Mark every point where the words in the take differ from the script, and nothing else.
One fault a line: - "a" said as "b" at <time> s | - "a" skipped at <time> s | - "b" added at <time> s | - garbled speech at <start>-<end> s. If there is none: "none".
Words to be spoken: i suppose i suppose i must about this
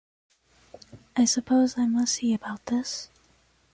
- "suppose i must" said as "must see" at 1.9 s